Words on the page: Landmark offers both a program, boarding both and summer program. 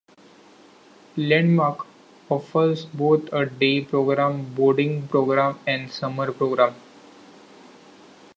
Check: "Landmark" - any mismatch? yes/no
no